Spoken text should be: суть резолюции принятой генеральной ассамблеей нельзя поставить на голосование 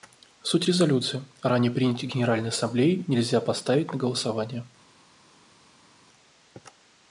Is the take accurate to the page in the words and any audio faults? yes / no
no